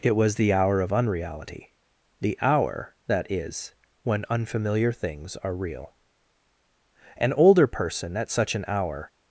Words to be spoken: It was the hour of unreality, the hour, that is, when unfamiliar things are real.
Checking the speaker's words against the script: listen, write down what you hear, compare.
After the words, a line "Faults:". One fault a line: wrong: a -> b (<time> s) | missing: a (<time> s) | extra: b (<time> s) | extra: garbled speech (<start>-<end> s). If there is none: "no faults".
It was the hour of unreality, the hour, that is, when unfamiliar things are real. An older person at such an hour
Faults:
extra: An older person at such an hour (7.2 s)